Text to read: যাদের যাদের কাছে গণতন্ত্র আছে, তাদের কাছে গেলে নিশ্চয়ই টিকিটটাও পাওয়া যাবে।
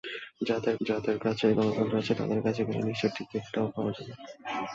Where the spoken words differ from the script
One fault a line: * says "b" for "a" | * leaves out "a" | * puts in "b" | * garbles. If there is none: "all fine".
all fine